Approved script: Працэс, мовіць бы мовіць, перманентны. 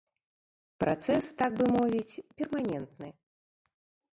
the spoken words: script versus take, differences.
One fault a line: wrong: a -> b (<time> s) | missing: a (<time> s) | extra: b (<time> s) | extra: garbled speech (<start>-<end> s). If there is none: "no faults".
wrong: мовіць -> так (1.4 s)